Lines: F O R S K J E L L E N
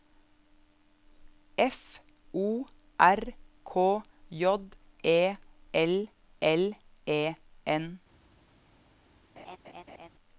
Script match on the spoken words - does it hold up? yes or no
no